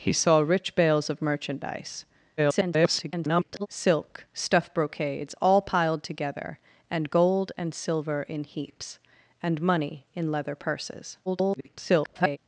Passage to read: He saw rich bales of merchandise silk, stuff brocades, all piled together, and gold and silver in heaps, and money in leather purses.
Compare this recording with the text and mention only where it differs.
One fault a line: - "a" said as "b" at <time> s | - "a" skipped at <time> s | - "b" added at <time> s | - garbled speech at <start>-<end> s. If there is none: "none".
- garbled speech at 2.4-3.7 s
- garbled speech at 11.3-12.4 s